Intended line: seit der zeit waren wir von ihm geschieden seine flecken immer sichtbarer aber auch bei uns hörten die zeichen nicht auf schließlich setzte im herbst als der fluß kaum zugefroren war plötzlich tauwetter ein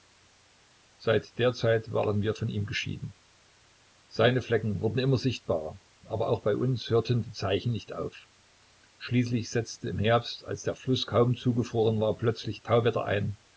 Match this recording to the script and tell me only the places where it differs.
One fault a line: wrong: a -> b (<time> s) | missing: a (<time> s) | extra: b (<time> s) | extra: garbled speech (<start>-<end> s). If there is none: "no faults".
extra: wurden (4.8 s)